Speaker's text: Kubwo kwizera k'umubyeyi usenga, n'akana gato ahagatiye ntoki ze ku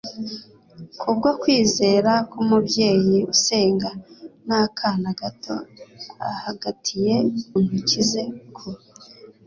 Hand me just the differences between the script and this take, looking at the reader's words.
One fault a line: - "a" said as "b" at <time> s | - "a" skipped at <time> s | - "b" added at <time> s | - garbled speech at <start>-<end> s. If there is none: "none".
none